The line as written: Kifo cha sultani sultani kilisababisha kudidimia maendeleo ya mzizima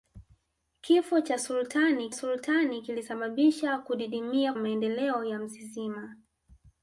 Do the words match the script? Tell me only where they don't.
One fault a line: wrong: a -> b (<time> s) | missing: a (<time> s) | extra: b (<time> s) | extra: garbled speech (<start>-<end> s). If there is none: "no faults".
no faults